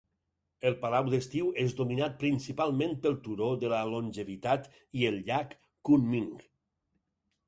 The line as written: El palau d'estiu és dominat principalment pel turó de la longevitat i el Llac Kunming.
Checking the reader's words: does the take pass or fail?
pass